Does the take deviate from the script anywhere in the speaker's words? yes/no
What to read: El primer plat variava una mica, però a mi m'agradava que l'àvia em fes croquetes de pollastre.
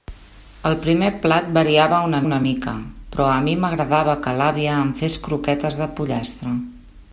yes